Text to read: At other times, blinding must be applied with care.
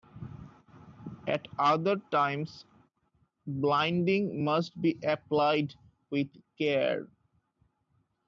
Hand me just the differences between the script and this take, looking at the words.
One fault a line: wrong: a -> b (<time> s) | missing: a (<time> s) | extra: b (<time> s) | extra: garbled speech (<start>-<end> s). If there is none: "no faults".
no faults